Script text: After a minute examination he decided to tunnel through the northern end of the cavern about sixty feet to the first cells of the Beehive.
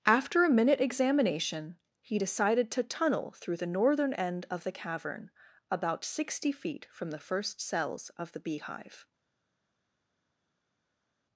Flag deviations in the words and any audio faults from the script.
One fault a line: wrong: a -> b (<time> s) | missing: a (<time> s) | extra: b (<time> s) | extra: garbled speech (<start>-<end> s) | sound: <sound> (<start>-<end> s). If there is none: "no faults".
wrong: to -> from (6.9 s)